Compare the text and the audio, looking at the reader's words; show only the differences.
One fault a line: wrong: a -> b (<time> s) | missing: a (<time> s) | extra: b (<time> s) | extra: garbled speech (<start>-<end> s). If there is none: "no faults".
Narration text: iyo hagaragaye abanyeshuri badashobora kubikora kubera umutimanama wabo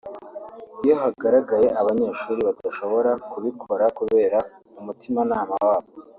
no faults